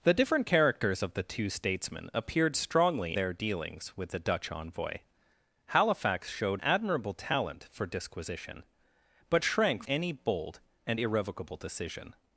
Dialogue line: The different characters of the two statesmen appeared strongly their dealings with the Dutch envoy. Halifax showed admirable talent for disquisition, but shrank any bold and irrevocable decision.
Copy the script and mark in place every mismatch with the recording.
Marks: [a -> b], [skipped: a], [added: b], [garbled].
The different characters of the two statesmen appeared strongly their dealings with the Dutch envoy. Halifax showed admirable talent for disquisition, but shrank any bold and irrevocable decision.